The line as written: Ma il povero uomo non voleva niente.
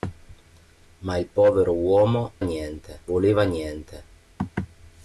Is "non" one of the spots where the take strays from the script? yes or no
yes